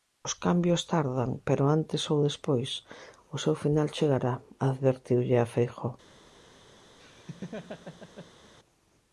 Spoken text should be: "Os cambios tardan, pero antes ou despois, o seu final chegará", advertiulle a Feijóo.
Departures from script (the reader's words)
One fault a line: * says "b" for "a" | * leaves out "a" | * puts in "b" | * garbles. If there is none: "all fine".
all fine